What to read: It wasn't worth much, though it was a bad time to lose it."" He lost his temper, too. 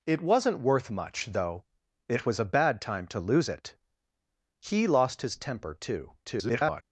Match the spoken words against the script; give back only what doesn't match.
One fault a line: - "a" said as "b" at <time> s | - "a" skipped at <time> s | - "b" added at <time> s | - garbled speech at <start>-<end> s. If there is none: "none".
- garbled speech at 6.2-6.8 s